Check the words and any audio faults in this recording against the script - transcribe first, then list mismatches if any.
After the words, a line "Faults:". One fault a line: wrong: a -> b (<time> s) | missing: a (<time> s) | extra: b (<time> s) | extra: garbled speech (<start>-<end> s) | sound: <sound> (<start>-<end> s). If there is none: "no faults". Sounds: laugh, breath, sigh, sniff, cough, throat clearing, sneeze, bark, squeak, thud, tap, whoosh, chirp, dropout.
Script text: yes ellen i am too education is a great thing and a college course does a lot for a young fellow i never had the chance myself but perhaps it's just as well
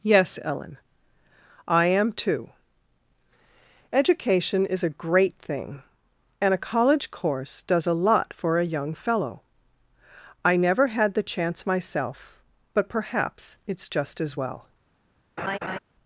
yes ellen i am too education is a great thing and a college course does a lot for a young fellow i never had the chance myself but perhaps it's just as well
Faults:
sound: laugh (15.4-15.8 s)